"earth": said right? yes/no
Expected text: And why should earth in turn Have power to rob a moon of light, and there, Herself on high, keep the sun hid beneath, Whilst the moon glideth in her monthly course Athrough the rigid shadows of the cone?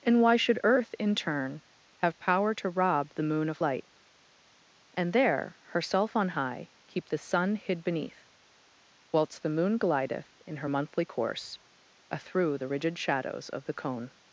yes